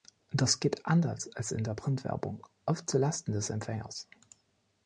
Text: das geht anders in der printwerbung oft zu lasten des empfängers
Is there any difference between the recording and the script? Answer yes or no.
yes